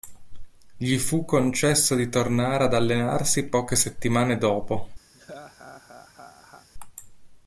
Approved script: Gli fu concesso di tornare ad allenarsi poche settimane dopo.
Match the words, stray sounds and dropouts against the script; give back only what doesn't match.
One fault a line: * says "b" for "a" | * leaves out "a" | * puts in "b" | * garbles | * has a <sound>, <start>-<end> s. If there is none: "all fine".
* has a laugh, 5.1-6.7 s